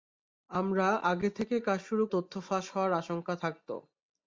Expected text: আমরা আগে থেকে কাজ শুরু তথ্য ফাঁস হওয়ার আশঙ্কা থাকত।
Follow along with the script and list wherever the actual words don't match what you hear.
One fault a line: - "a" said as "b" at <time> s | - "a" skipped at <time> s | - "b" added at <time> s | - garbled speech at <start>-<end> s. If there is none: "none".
none